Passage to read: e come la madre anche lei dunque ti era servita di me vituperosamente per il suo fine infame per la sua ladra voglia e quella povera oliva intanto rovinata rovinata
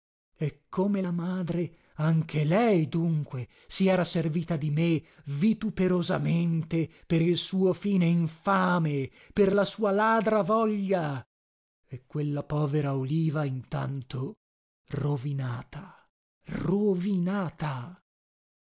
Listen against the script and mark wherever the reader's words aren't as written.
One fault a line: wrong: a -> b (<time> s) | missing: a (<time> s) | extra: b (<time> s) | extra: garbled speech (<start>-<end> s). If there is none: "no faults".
wrong: ti -> si (3.7 s)